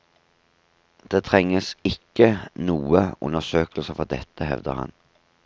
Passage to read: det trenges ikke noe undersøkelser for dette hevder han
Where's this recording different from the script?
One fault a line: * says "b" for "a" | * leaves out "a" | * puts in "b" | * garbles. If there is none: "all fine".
all fine